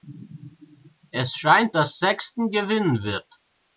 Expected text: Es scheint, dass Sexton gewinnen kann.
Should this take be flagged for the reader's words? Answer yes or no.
yes